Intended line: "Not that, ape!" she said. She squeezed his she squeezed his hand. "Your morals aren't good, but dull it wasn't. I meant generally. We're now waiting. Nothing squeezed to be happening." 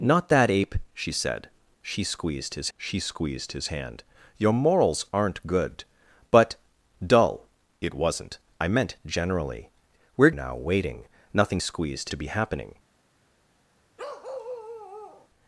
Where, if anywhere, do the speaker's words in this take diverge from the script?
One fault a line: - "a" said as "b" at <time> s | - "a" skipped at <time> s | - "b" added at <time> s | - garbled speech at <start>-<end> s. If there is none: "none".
none